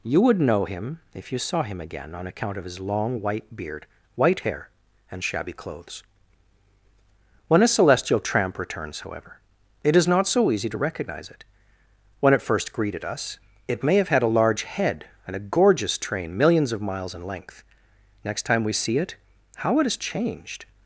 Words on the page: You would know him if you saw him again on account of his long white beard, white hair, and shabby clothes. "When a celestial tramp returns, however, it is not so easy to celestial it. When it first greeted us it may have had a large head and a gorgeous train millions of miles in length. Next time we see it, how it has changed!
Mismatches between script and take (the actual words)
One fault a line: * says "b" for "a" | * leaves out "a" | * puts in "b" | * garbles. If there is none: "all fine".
* says "recognize" for "celestial"